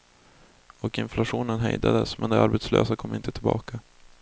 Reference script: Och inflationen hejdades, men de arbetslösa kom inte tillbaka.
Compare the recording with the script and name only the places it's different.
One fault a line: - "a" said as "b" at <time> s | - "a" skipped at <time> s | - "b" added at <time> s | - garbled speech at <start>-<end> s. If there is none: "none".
none